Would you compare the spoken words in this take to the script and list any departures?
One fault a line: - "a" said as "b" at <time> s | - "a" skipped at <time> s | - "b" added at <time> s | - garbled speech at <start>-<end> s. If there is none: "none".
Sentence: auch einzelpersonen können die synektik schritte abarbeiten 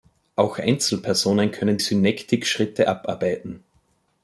- "die" skipped at 1.8 s